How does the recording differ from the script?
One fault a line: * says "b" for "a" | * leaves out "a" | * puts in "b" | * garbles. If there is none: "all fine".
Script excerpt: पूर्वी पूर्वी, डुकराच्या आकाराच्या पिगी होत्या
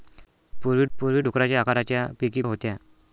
all fine